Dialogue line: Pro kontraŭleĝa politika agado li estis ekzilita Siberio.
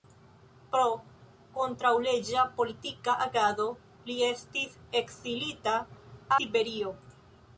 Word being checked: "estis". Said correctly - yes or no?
yes